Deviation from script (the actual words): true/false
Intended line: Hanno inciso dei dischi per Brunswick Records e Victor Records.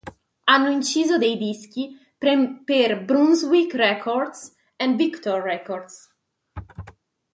false